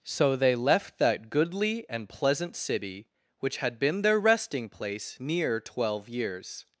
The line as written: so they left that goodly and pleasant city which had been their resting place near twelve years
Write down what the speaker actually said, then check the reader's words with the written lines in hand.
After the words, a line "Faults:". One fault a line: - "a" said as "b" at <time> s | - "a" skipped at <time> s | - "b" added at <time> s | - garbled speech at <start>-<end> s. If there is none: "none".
so they left that goodly and pleasant city which had been their resting place near twelve years
Faults:
none